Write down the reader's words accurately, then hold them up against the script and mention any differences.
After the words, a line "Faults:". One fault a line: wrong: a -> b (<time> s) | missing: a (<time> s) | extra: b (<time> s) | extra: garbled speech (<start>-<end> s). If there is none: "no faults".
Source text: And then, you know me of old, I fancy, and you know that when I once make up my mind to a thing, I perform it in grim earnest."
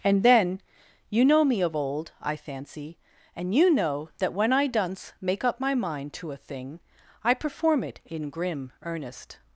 And then, you know me of old, I fancy, and you know that when I dunce make up my mind to a thing, I perform it in grim earnest."
Faults:
wrong: once -> dunce (4.7 s)